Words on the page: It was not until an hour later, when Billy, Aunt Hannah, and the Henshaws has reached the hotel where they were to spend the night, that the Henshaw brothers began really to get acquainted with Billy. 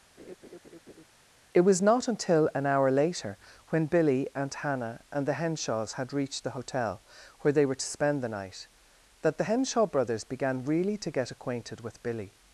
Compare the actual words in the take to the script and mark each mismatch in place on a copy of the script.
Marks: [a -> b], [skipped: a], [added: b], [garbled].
It was not until an hour later, when Billy, Aunt Hannah, and the Henshaws [has -> had] reached the hotel where they were to spend the night, that the Henshaw brothers began really to get acquainted with Billy.